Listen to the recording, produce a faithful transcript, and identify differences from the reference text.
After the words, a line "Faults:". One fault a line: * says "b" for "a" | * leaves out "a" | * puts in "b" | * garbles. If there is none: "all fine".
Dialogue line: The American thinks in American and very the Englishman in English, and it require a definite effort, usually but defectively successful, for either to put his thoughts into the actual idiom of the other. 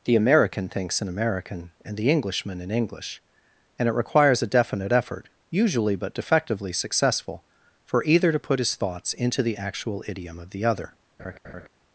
The American thinks in American and the Englishman in English, and it requires a definite effort, usually but defectively successful, for either to put his thoughts into the actual idiom of the other.
Faults:
* leaves out "very"
* says "requires" for "require"